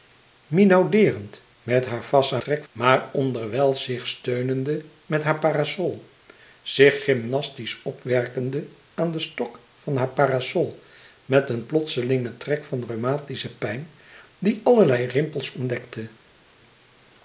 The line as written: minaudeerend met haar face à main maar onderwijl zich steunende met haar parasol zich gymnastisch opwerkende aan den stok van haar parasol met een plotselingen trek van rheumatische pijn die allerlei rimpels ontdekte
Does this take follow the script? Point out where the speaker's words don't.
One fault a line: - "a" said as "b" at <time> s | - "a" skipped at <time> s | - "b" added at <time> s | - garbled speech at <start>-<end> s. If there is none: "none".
- "main" said as "trek" at 2.4 s